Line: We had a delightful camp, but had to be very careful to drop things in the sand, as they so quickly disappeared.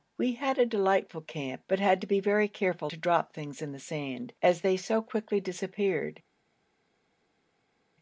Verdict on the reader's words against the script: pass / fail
pass